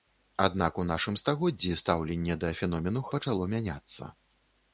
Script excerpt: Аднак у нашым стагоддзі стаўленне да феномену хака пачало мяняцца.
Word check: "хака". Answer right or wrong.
wrong